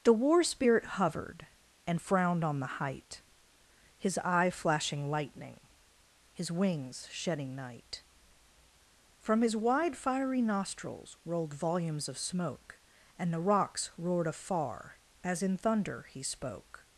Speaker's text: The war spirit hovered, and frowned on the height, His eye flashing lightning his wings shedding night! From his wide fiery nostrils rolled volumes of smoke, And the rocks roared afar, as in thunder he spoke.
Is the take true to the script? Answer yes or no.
yes